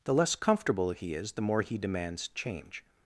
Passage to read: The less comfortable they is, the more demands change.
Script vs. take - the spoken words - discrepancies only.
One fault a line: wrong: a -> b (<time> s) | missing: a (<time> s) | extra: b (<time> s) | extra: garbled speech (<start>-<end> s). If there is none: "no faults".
wrong: they -> he (0.9 s)
extra: he (1.6 s)